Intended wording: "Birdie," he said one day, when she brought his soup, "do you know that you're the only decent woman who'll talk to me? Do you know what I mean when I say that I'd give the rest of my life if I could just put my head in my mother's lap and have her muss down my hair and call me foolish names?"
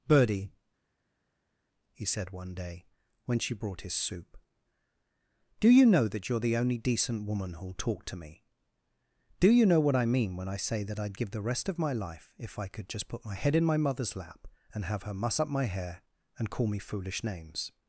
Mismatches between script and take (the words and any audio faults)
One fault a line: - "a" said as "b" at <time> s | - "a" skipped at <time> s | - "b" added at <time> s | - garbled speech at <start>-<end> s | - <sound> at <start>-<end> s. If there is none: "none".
- "down" said as "up" at 15.4 s